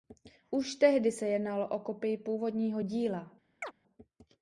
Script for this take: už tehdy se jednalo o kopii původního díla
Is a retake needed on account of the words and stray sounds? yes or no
yes